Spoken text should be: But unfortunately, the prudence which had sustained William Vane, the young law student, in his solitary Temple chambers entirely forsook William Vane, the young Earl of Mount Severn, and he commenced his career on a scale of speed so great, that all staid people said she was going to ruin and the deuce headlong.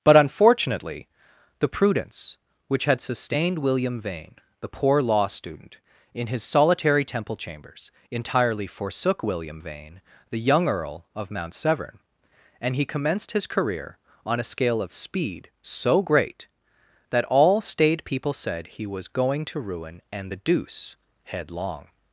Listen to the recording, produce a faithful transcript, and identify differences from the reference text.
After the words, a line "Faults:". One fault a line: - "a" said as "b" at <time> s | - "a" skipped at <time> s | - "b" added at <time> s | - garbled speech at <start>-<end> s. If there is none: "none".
But unfortunately, the prudence which had sustained William Vane, the poor law student, in his solitary Temple chambers entirely forsook William Vane, the young Earl of Mount Severn, and he commenced his career on a scale of speed so great, that all staid people said he was going to ruin and the deuce headlong.
Faults:
- "young" said as "poor" at 4.7 s
- "she" said as "he" at 18.6 s